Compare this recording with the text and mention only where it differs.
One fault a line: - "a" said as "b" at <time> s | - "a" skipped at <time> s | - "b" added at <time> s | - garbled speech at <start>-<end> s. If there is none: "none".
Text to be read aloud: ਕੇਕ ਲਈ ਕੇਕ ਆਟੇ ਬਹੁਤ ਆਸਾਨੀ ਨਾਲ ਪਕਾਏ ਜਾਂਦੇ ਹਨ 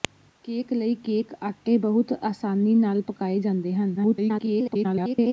- garbled speech at 4.0-5.3 s